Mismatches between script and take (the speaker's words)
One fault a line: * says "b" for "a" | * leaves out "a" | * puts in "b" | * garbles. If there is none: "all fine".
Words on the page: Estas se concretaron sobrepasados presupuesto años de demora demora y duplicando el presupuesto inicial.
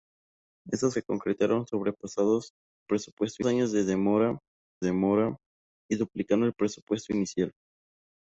all fine